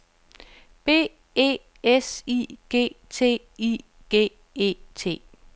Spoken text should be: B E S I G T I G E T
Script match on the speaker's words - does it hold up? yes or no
yes